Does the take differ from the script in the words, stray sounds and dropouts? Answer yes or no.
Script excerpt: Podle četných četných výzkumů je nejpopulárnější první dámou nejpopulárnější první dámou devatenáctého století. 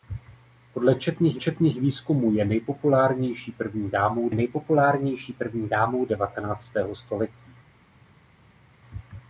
no